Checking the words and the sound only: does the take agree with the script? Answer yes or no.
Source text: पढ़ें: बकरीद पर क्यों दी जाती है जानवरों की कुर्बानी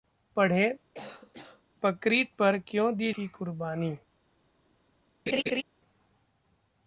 no